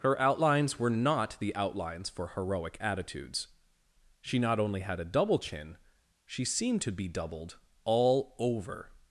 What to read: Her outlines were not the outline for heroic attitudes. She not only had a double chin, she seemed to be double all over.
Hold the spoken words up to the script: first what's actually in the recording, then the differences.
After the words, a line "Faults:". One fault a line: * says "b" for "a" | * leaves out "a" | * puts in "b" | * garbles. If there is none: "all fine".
Her outlines were not the outlines for heroic attitudes. She not only had a double chin, she seemed to be doubled all over.
Faults:
* says "outlines" for "outline"
* says "doubled" for "double"